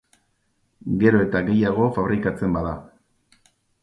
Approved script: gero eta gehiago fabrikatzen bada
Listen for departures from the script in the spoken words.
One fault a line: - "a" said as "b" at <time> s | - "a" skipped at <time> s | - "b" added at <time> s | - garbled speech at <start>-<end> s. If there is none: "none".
none